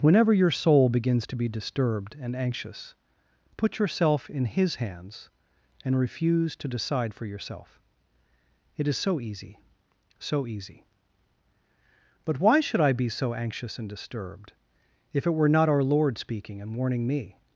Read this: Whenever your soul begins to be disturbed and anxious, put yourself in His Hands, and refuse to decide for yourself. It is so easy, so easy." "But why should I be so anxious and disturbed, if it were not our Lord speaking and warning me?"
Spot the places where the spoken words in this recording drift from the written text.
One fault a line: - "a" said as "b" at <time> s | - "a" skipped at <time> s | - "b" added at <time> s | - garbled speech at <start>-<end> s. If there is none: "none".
none